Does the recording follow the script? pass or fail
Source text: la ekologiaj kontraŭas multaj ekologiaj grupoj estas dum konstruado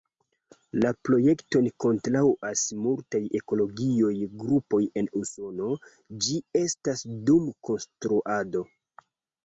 fail